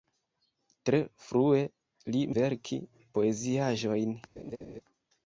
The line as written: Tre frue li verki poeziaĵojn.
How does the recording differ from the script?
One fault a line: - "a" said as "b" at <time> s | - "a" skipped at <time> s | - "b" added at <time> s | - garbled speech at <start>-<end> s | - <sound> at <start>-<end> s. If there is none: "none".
- laugh at 4.4-4.8 s